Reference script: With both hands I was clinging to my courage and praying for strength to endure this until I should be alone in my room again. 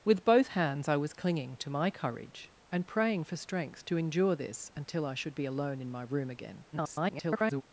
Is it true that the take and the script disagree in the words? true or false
true